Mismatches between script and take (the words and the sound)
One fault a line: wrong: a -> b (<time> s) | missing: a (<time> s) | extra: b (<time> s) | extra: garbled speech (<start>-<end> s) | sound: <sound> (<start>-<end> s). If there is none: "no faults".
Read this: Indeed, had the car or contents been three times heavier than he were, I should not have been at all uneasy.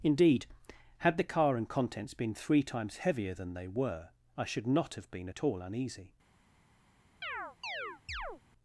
wrong: or -> and (1.6 s)
wrong: he -> they (3.5 s)
sound: chirp (7.2-8.4 s)